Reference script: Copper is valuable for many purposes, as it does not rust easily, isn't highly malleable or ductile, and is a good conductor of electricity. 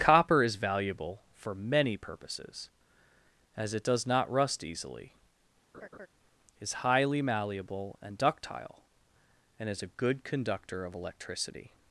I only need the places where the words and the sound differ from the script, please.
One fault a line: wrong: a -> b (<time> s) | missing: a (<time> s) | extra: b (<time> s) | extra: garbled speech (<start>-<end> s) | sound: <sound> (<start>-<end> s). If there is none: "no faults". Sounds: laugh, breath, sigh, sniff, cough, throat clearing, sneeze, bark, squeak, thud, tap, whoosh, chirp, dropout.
sound: laugh (5.7-6.1 s)
wrong: isn't -> is (6.6 s)
wrong: or -> and (8.0 s)